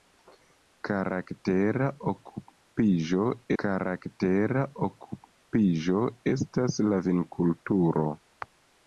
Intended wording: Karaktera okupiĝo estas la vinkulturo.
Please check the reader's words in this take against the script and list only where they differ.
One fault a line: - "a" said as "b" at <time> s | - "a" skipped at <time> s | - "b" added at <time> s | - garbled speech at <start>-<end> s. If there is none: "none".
- "karaktera okupiĝo" added at 3.6 s